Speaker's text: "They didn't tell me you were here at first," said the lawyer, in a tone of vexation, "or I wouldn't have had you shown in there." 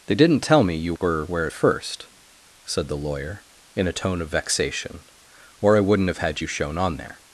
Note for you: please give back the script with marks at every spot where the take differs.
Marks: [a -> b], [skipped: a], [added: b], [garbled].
"They didn't tell me you were [here -> where] at first," said the lawyer, in a tone of vexation, "or I wouldn't have had you shown [in -> on] there."